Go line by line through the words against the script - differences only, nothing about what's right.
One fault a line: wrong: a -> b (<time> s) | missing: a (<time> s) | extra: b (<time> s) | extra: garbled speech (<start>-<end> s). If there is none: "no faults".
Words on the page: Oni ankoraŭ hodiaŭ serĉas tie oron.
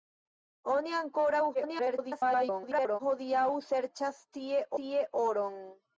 extra: garbled speech (1.5-3.0 s)
extra: tie (4.8 s)